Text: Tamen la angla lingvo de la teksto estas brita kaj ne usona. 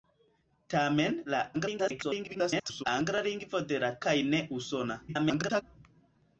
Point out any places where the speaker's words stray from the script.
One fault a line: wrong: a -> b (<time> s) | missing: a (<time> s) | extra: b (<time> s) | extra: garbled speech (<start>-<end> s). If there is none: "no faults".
extra: garbled speech (1.5-2.8 s)
missing: teksto estas brita (3.9 s)
extra: garbled speech (5.1-5.6 s)